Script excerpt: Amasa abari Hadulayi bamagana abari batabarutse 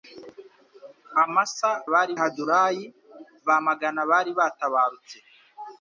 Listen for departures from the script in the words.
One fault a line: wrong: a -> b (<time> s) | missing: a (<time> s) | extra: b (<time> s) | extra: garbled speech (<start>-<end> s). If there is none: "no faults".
no faults